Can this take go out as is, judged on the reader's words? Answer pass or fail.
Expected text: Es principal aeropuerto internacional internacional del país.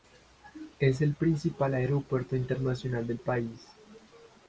fail